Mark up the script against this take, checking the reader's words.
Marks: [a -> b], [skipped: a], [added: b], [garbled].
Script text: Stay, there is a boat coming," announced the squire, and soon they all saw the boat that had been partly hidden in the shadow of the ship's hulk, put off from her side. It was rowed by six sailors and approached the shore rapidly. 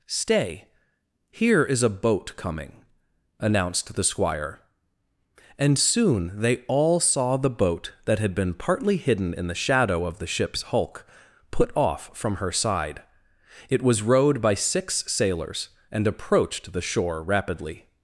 Stay, [there -> here] is a boat coming," announced the squire, and soon they all saw the boat that had been partly hidden in the shadow of the ship's hulk, put off from her side. It was rowed by six sailors and approached the shore rapidly.